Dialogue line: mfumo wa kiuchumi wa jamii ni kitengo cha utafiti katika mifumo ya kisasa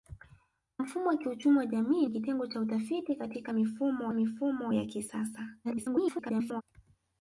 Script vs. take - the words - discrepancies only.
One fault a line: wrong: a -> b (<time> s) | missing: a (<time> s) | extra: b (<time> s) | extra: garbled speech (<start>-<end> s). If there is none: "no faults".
missing: ni (2.0 s)
extra: mifumo (4.1 s)
extra: garbled speech (5.6-6.6 s)